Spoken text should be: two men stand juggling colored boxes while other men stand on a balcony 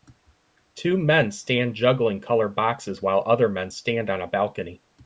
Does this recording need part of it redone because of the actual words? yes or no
no